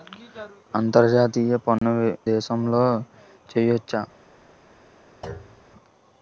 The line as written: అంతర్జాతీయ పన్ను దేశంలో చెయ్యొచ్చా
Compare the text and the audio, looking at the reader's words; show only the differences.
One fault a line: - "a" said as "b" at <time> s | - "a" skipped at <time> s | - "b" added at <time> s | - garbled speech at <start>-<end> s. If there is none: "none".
none